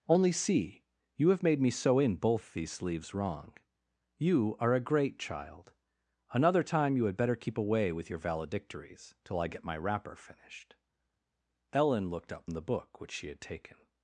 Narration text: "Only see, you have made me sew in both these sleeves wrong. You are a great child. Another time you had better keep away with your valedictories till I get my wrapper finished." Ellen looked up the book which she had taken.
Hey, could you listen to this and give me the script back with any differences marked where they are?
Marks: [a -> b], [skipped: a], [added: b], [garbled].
"Only see, you have made me sew in both these sleeves wrong. You are a great child. Another time you had better keep away with your valedictories till I get my wrapper finished." Ellen looked up the book which she had taken.